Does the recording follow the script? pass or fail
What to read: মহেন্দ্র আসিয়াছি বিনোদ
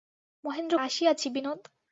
pass